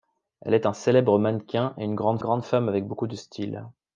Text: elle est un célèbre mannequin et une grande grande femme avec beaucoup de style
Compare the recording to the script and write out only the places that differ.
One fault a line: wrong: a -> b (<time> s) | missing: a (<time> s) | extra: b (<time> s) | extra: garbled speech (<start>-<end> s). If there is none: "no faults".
no faults